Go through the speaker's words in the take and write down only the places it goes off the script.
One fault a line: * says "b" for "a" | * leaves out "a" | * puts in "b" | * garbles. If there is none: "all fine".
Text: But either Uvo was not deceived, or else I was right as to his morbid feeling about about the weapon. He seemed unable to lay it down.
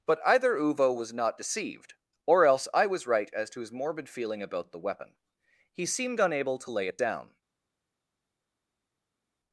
* leaves out "about"